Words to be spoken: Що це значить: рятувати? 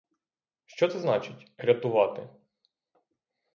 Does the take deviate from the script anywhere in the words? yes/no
no